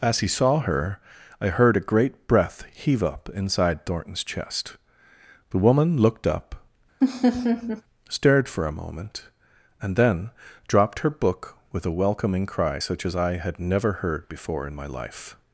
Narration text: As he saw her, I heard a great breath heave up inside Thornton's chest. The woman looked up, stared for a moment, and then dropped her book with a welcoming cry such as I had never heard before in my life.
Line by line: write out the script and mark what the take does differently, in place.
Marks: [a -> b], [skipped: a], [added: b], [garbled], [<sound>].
As he saw her, I heard a great breath heave up inside Thornton's chest. The woman looked up, [laugh] stared for a moment, and then dropped her book with a welcoming cry such as I had never heard before in my life.